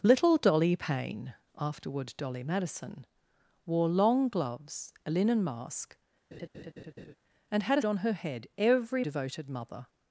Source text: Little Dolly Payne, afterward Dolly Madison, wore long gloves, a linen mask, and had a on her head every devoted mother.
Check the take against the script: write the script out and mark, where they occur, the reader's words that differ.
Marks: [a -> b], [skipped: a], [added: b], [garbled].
Little Dolly Payne, afterward Dolly Madison, wore long gloves, a linen mask, and had a on her head every devoted mother.